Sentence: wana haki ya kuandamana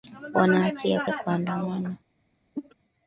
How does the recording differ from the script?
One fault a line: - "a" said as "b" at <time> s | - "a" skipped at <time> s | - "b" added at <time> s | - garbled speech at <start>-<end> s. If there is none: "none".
- "ya" added at 1.0 s